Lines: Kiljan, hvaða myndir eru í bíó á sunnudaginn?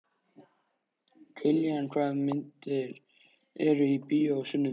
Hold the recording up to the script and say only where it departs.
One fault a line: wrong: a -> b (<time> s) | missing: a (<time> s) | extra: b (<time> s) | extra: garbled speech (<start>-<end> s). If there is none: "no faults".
no faults